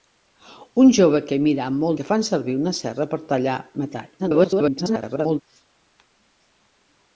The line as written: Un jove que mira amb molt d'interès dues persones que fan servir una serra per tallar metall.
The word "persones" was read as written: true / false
false